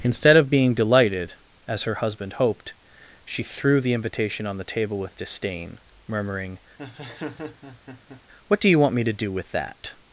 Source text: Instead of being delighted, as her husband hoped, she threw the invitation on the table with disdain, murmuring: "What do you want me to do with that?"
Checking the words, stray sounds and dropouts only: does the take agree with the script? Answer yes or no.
no